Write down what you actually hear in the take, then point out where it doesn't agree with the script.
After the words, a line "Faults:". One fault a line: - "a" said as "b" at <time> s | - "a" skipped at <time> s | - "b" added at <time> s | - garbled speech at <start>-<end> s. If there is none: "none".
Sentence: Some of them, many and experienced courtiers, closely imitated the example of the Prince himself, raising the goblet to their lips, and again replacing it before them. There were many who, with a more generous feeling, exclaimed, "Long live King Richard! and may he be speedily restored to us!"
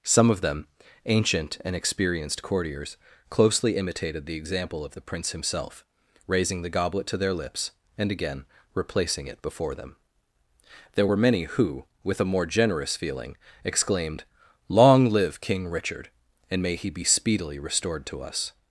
Some of them, ancient and experienced courtiers, closely imitated the example of the Prince himself, raising the goblet to their lips, and again replacing it before them. There were many who, with a more generous feeling, exclaimed, "Long live King Richard! and may he be speedily restored to us!"
Faults:
- "many" said as "ancient" at 1.1 s